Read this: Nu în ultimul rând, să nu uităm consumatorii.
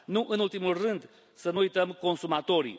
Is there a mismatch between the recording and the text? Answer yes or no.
no